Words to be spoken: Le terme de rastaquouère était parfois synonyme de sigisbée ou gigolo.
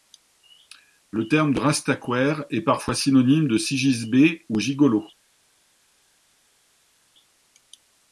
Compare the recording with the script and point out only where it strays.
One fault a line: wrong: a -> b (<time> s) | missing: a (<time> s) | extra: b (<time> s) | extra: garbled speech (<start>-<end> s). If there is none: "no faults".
wrong: était -> est (2.5 s)